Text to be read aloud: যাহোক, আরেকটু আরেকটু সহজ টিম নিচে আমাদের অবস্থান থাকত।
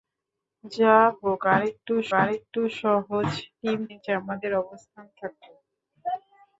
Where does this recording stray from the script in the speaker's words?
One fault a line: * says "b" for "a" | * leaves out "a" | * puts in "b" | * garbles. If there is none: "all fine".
all fine